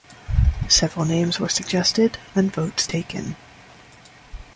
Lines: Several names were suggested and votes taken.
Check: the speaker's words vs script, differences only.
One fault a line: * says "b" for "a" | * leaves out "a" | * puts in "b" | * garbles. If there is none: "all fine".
all fine